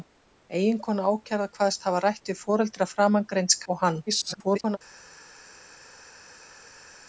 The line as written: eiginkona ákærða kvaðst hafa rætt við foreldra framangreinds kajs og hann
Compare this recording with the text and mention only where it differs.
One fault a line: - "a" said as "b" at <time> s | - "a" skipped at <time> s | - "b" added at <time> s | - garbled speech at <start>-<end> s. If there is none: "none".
- "kajs" skipped at 3.6 s
- garbled speech at 4.1-4.8 s